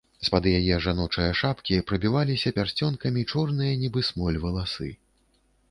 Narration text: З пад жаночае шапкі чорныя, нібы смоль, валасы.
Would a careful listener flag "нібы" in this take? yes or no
no